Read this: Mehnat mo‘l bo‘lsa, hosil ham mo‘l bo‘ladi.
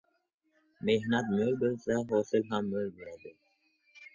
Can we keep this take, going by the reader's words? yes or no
yes